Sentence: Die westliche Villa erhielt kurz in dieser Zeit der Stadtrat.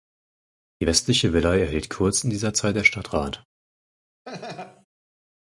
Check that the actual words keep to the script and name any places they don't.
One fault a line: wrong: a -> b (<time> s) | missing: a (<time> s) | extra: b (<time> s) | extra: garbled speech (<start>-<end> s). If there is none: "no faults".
no faults